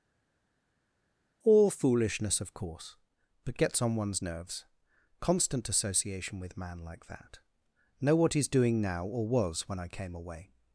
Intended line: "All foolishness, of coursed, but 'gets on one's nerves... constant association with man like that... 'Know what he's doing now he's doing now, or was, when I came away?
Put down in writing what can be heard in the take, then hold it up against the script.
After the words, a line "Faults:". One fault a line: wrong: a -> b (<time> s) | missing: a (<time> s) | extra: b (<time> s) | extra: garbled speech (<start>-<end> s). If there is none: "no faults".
"All foolishness, of course, but 'gets on one's nerves... constant association with man like that... 'Know what he's doing now, or was, when I came away?
Faults:
wrong: coursed -> course (2.5 s)
missing: he's doing now (9.1 s)